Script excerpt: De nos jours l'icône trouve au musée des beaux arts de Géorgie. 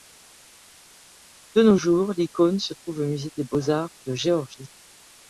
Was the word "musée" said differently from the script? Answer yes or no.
no